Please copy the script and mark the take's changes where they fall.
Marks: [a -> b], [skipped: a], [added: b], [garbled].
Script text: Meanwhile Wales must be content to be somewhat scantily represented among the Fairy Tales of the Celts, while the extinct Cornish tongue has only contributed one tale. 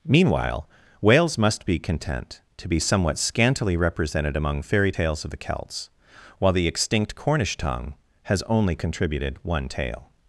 Meanwhile Wales must be content to be somewhat scantily represented among [skipped: the] Fairy Tales of the Celts, while the extinct Cornish tongue has only contributed one tale.